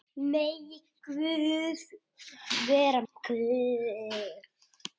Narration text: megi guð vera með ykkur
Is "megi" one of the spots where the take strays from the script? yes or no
no